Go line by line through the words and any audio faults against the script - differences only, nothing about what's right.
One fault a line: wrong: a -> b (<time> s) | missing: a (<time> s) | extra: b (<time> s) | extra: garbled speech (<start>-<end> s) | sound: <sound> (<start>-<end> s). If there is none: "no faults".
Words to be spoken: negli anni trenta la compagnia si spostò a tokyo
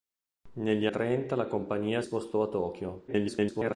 missing: anni (0.9 s)
missing: si (2.0 s)
extra: garbled speech (3.1-3.8 s)